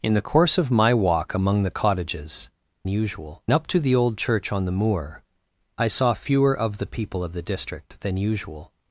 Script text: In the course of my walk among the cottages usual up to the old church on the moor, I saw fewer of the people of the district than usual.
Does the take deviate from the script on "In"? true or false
false